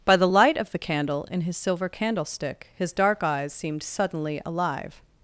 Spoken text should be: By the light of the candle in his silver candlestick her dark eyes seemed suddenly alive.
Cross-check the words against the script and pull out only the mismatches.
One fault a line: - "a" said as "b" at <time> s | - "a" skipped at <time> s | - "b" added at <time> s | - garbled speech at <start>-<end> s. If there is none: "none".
- "her" said as "his" at 2.7 s